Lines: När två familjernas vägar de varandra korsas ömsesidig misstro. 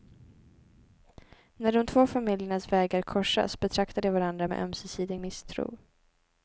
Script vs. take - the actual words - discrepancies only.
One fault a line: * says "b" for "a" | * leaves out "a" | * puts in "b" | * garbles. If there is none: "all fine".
* puts in "de"
* puts in "korsas betraktar"
* says "med" for "korsas"